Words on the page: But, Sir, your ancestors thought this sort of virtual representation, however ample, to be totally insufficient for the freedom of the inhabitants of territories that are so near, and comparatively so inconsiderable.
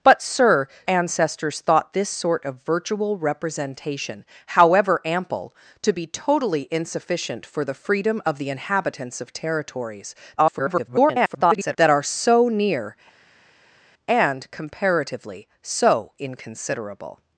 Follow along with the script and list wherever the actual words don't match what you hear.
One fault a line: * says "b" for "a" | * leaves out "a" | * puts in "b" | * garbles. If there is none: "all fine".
* leaves out "your"
* garbles